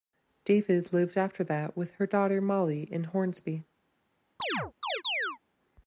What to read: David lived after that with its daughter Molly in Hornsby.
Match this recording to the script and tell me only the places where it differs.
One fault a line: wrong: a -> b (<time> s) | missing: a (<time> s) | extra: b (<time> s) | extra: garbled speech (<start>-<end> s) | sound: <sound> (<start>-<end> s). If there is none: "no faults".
wrong: its -> her (1.9 s)
sound: chirp (4.4-5.4 s)